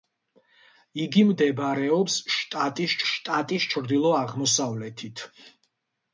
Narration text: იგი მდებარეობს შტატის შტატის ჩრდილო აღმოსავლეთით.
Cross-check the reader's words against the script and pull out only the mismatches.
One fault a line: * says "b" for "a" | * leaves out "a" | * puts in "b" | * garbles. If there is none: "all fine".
all fine